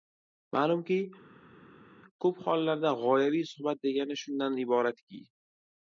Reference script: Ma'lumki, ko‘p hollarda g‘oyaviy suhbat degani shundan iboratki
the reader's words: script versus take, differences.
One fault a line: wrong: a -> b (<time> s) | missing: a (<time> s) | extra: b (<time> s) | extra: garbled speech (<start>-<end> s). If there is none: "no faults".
no faults